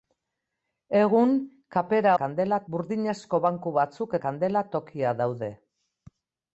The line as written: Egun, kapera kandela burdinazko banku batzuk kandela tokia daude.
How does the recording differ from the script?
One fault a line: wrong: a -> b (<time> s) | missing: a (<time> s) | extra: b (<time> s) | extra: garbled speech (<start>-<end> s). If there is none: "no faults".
no faults